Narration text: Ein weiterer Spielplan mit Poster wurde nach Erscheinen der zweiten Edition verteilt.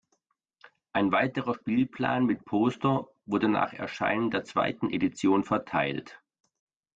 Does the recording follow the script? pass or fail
pass